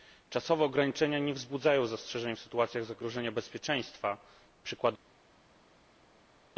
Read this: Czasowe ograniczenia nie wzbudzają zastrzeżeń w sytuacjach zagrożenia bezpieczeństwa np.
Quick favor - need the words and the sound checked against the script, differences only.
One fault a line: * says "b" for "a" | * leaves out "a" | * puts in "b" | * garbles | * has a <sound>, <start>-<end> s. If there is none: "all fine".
all fine